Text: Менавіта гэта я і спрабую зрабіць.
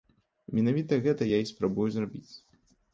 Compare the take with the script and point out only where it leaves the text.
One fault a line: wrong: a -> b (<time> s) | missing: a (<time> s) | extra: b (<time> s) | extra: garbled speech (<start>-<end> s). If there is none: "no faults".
no faults